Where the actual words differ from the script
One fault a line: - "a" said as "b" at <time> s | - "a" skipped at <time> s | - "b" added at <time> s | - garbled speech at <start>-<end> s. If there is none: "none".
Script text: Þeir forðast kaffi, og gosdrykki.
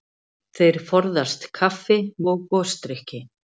none